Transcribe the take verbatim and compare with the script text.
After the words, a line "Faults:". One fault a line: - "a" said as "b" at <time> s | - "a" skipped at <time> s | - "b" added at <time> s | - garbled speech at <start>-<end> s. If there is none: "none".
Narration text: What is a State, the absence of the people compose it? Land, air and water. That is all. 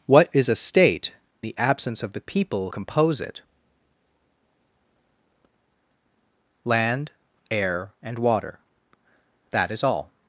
What is a State, the absence of the people compose it? Land, air and water. That is all.
Faults:
none